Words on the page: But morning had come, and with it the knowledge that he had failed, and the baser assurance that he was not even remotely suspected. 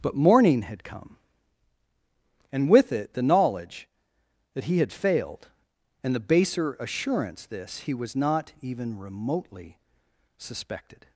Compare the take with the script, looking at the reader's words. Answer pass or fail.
fail